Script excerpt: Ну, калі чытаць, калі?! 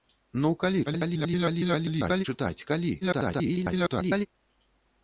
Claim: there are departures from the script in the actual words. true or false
true